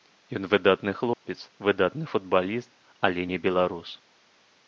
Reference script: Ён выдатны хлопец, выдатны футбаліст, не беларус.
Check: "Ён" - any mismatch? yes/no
no